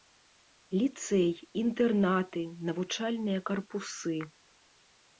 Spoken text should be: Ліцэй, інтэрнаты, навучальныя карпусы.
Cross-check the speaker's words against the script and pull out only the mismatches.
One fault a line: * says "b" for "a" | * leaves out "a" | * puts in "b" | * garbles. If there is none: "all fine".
all fine